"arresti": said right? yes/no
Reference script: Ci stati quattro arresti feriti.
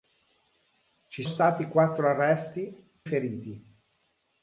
yes